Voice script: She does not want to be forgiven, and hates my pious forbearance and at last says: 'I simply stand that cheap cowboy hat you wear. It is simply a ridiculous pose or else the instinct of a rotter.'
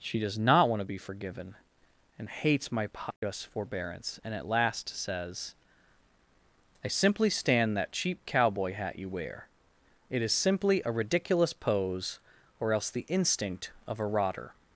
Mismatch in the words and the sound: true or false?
false